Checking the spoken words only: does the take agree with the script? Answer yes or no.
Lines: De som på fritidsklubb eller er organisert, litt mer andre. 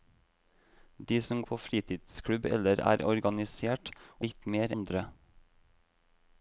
yes